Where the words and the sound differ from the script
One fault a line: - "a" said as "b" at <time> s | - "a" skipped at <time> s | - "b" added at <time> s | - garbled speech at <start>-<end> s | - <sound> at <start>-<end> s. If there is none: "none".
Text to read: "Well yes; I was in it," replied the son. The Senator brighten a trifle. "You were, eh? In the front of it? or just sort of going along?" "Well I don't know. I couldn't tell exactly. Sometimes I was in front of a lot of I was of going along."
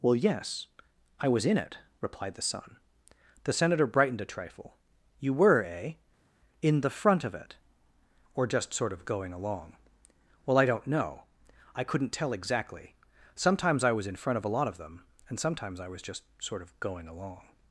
- "brighten" said as "brightened" at 3.9 s
- "them and sometimes" added at 14.8 s
- "just sort" added at 16.0 s